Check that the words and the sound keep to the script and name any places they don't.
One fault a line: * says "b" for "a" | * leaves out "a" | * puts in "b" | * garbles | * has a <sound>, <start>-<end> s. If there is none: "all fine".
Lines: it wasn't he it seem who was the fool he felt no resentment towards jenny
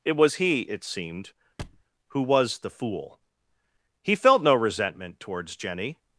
* says "was" for "wasn't"
* says "seemed" for "seem"
* has a thud, 1.6-1.8 s